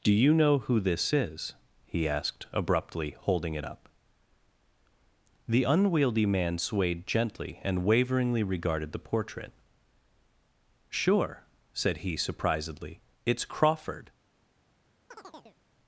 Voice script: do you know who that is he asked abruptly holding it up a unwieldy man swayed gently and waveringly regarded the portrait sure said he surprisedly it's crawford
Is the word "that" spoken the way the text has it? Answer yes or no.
no